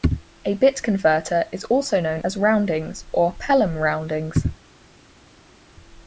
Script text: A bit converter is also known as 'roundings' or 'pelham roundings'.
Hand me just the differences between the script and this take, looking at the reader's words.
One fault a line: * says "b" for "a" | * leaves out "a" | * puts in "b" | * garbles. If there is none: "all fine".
all fine